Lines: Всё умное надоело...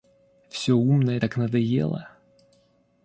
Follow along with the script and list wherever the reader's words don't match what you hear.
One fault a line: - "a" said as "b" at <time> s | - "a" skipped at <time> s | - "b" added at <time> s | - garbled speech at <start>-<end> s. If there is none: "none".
- "так" added at 1.2 s